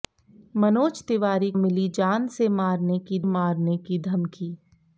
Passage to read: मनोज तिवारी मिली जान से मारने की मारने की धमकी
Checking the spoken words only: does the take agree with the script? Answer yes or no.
yes